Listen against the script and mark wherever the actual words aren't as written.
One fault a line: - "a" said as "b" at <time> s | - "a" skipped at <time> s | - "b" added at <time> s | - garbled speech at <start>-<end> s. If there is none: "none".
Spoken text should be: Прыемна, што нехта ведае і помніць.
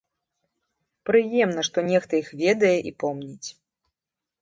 - "іх" added at 2.2 s